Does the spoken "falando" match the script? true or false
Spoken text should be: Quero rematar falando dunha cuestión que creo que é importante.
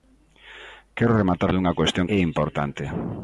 false